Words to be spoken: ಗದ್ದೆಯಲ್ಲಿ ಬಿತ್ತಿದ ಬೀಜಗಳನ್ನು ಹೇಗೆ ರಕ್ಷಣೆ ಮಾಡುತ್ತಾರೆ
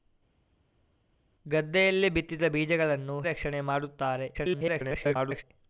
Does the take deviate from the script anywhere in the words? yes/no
yes